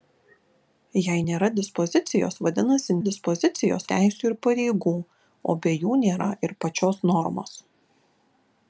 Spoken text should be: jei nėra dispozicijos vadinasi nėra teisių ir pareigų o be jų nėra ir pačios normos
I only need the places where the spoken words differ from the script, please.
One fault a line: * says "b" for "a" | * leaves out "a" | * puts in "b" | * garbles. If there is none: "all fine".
* says "dispozicijos" for "nėra"